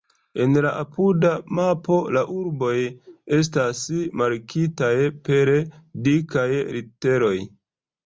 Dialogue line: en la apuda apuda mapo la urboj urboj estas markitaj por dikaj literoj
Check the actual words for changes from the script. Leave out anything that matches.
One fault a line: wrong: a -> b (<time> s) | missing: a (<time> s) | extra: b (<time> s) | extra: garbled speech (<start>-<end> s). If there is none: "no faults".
missing: apuda (1.3 s)
missing: urboj (2.7 s)
wrong: por -> per (5.3 s)